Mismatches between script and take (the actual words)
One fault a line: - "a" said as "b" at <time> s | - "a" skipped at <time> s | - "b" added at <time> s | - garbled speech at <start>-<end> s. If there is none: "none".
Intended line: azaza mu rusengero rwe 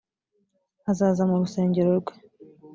none